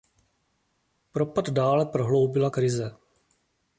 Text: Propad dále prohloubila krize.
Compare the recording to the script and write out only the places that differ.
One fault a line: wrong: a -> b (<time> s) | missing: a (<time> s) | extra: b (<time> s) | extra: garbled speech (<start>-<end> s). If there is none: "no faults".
no faults